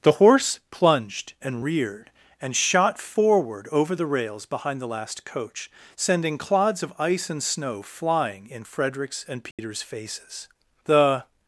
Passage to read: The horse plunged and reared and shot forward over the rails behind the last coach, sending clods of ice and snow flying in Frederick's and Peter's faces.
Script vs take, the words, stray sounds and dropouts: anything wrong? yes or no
yes